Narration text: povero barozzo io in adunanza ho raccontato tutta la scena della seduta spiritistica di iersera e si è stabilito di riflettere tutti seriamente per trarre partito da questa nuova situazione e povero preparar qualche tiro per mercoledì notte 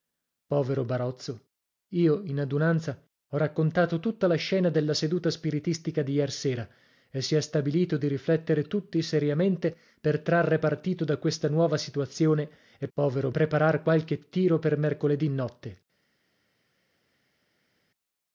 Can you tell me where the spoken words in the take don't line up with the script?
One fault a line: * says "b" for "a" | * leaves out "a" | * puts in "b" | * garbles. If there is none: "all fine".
all fine